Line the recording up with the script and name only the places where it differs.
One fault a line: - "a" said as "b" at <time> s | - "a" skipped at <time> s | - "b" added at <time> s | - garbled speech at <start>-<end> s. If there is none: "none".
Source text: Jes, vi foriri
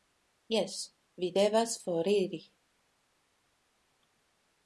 - "devas" added at 1.4 s